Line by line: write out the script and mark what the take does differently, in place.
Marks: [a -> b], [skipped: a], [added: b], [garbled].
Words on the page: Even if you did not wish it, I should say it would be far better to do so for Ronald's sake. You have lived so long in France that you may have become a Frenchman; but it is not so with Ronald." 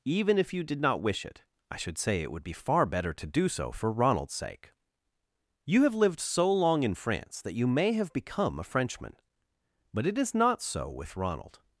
Even if you did not wish it, I should say it would be far better to do so for Ronald's sake. You have lived so long in France that you may have become a Frenchman; but it is not so with Ronald."